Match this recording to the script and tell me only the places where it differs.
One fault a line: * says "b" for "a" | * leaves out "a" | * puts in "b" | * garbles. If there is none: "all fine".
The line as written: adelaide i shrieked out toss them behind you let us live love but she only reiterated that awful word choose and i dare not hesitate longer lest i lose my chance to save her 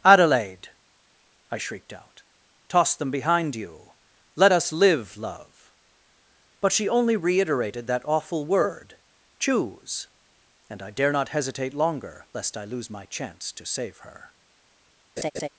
all fine